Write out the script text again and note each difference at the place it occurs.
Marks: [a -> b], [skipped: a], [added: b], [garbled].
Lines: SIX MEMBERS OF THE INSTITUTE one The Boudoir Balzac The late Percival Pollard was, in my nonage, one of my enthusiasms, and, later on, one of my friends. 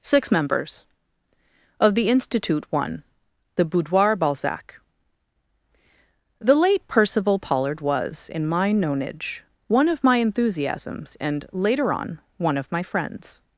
SIX MEMBERS OF THE INSTITUTE one The Boudoir Balzac The late Percival Pollard was, in my nonage, one of my enthusiasms, and, later on, one of my friends.